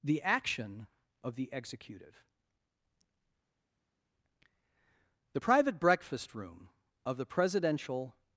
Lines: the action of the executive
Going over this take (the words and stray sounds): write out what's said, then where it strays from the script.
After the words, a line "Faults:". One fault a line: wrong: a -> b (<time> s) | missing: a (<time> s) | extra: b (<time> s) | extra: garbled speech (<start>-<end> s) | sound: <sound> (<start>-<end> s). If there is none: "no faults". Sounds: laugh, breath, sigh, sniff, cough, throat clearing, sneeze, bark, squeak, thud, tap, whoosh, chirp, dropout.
the action of the executive the private breakfast room of the presidential
Faults:
extra: the private breakfast room of the presidential (5.3 s)